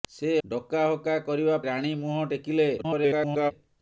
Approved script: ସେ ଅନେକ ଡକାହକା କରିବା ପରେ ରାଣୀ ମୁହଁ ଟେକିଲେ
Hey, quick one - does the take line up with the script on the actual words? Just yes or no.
no